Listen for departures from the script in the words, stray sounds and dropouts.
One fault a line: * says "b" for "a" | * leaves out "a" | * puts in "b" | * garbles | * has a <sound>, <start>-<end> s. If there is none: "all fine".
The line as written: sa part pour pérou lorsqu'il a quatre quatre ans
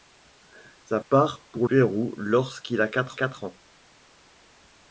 all fine